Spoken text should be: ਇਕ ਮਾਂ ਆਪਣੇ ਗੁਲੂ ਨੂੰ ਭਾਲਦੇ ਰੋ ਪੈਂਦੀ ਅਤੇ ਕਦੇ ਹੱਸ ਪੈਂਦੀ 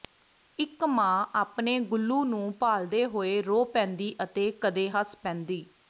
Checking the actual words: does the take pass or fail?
fail